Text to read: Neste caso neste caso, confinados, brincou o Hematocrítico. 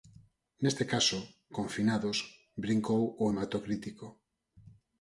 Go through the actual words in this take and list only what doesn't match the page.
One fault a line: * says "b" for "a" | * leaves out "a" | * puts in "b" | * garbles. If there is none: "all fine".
* leaves out "neste caso"